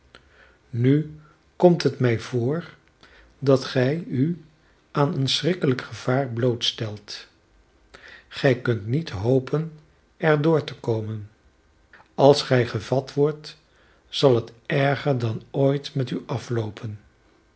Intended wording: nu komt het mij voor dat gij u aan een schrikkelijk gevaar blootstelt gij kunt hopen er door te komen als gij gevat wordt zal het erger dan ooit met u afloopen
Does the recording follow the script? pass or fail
fail